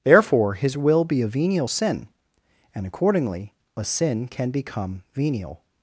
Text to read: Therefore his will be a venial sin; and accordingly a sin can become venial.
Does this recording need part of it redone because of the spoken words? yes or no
no